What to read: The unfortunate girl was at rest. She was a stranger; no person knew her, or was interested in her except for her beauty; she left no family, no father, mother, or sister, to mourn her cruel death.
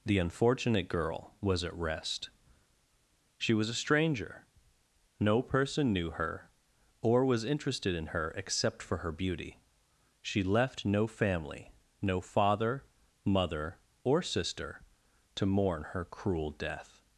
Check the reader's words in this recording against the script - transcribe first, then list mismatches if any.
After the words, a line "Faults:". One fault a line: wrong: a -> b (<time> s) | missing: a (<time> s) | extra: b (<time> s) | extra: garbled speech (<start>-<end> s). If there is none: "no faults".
The unfortunate girl was at rest. She was a stranger; no person knew her, or was interested in her except for her beauty; she left no family, no father, mother, or sister, to mourn her cruel death.
Faults:
no faults